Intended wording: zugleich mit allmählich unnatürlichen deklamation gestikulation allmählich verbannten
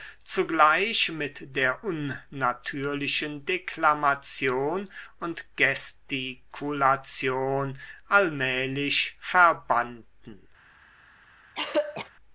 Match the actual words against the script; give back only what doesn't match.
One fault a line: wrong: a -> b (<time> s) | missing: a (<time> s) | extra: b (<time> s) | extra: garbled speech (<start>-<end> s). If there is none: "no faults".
wrong: allmählich -> der (1.6 s)
extra: und (5.2 s)